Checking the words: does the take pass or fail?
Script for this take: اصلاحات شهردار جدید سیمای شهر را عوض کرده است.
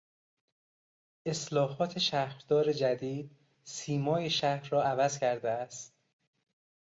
pass